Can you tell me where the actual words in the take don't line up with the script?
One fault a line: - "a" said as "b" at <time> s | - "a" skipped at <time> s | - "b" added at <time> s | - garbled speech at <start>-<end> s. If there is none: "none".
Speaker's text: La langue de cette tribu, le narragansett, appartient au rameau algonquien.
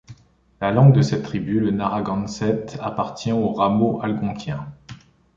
none